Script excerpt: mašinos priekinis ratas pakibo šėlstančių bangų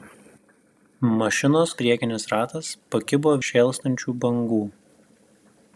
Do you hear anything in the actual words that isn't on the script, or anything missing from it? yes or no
no